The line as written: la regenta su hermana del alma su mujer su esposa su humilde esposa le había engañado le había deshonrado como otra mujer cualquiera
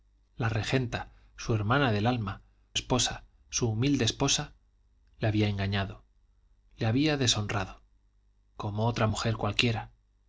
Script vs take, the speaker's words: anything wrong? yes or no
yes